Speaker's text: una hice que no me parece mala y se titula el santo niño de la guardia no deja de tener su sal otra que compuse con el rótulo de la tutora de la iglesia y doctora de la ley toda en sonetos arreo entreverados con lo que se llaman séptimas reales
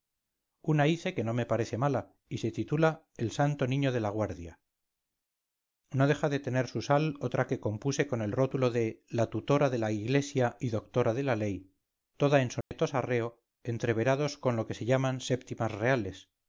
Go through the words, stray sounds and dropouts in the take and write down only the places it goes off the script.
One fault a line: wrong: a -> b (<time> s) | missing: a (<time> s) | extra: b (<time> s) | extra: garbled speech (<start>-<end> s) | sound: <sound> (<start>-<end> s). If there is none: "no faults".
sound: dropout (12.6-12.7 s)